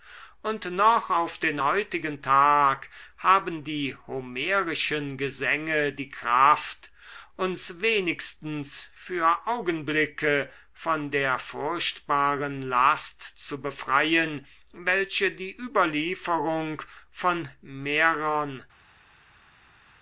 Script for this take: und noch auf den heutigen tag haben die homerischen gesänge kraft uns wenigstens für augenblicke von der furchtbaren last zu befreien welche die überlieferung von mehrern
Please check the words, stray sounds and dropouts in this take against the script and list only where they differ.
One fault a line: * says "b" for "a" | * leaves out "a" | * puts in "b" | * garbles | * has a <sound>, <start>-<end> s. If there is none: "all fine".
* puts in "die"